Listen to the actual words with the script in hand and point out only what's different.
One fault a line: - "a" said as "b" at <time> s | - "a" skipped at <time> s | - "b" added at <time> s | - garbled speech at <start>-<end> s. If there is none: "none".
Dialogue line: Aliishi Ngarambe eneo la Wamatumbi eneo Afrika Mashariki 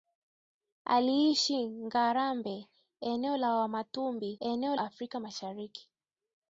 none